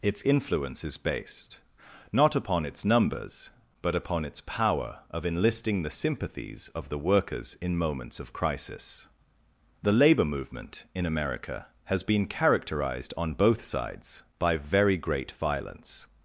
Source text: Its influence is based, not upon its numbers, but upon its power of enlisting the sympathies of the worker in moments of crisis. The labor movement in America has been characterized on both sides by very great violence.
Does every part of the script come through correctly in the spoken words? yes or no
no